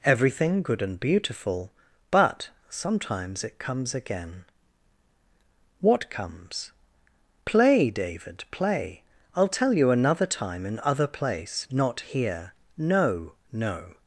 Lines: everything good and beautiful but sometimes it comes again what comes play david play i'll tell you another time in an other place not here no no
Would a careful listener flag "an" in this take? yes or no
yes